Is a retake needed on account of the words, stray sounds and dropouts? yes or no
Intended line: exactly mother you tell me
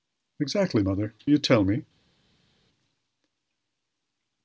no